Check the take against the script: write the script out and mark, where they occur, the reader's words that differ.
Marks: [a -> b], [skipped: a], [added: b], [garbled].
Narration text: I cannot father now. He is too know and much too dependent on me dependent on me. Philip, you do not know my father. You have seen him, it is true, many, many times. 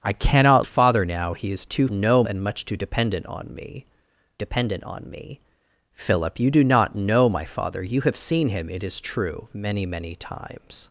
I cannot father now. He is too know and much too dependent on me dependent on me. Philip, you do not know my father. You have seen him, it is true, many, many times.